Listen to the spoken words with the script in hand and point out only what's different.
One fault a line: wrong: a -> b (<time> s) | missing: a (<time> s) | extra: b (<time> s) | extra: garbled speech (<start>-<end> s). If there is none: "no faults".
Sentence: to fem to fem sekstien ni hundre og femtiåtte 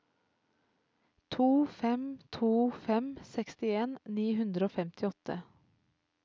no faults